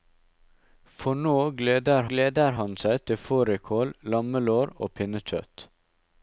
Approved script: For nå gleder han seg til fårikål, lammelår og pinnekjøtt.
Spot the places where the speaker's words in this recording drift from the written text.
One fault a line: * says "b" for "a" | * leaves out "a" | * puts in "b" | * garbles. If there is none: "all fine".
* puts in "gleder"